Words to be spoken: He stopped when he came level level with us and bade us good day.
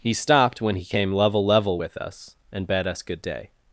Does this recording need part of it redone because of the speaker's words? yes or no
no